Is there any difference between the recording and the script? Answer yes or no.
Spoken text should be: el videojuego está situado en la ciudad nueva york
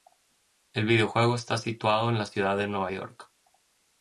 yes